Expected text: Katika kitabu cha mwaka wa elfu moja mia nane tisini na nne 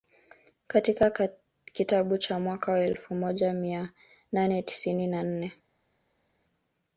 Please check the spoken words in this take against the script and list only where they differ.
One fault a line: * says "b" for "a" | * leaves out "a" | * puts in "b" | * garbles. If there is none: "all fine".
all fine